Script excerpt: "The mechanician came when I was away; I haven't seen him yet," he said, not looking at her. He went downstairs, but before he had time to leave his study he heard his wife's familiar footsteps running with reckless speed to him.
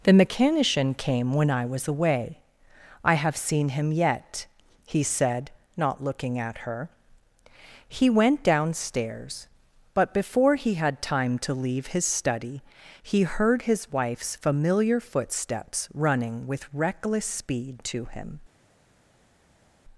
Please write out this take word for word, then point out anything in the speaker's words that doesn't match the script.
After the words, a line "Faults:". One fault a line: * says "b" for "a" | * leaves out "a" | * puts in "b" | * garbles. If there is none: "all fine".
"The mechanician came when I was away; I have seen him yet," he said, not looking at her. He went downstairs, but before he had time to leave his study he heard his wife's familiar footsteps running with reckless speed to him.
Faults:
* says "have" for "haven't"